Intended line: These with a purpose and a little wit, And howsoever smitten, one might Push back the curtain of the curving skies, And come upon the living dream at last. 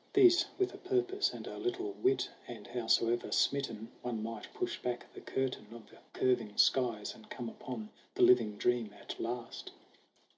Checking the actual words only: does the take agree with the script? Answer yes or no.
yes